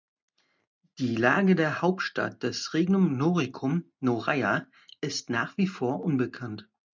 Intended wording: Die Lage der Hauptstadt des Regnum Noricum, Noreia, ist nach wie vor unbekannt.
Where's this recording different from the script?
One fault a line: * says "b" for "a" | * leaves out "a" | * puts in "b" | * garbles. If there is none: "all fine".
all fine